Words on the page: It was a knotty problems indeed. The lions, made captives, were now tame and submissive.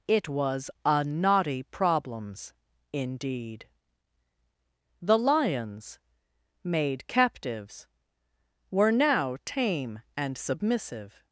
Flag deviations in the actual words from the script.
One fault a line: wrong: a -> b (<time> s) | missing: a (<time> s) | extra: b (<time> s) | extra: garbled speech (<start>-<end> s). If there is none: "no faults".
no faults